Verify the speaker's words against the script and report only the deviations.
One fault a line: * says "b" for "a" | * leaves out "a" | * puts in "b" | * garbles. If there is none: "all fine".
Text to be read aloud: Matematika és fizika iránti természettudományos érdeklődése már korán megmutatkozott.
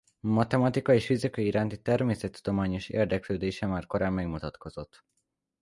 all fine